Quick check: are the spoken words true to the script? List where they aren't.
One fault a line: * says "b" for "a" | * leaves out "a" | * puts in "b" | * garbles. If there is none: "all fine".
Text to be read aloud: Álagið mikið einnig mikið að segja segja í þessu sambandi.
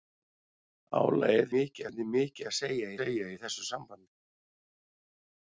all fine